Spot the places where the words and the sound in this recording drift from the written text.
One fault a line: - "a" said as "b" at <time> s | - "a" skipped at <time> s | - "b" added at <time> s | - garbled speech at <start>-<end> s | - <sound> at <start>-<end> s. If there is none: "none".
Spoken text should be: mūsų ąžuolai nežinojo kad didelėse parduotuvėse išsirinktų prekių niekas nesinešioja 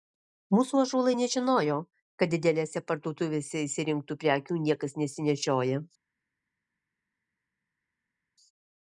none